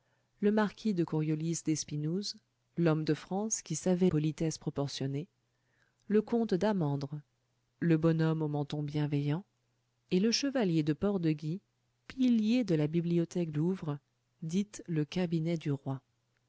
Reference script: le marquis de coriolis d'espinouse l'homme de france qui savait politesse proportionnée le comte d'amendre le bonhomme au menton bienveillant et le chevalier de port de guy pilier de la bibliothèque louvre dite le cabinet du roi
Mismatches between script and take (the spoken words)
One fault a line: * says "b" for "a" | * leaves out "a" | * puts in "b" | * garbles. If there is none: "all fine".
all fine